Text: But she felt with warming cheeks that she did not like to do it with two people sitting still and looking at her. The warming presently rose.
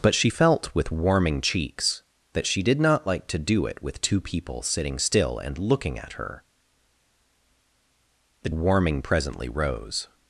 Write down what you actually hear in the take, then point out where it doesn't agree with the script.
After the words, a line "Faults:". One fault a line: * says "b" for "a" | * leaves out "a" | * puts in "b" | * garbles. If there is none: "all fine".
But she felt with warming cheeks that she did not like to do it with two people sitting still and looking at her. The warming presently rose.
Faults:
all fine